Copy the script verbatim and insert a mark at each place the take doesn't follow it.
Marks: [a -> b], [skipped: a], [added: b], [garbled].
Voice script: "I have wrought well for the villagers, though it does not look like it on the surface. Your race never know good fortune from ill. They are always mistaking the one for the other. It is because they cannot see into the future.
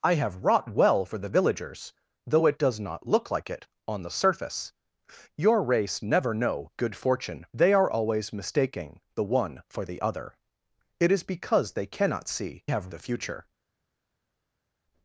"I have wrought well for the villagers, though it does not look like it on the surface. Your race never know good fortune [skipped: from ill.] They are always mistaking the one for the other. It is because they cannot see [into -> have] the future.